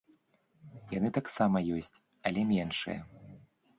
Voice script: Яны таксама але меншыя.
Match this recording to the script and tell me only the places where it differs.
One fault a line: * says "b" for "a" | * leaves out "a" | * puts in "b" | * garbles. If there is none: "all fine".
* puts in "ёсць"